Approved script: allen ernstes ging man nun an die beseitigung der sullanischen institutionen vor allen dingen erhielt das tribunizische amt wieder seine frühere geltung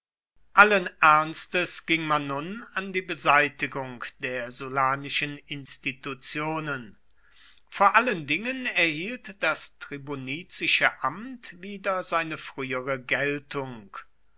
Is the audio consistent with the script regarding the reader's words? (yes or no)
yes